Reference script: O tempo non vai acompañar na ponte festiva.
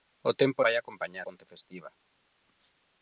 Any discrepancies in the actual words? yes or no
yes